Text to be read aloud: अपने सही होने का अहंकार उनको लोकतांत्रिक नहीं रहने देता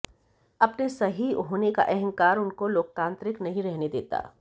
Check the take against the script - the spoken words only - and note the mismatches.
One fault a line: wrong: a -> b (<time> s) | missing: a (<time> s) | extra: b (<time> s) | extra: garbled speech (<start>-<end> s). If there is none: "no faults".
no faults